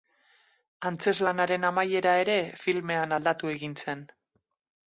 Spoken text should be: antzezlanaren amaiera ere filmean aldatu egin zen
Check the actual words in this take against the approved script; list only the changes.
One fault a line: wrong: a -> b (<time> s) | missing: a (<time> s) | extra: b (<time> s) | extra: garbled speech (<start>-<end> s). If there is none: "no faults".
no faults